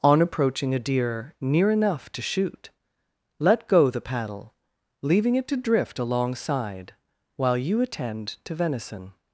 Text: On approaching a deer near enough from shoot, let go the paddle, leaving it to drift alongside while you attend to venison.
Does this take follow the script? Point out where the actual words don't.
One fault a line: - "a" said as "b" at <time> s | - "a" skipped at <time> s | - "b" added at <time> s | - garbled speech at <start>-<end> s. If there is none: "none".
- "from" said as "to" at 2.1 s